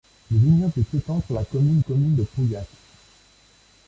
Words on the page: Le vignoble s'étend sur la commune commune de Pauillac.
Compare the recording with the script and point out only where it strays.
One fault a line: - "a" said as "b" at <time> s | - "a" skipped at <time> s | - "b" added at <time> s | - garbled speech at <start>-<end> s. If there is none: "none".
none